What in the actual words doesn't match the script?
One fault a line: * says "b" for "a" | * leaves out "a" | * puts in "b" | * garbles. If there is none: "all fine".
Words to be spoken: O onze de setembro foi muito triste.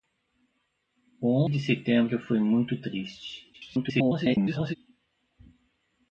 * leaves out "onze"
* garbles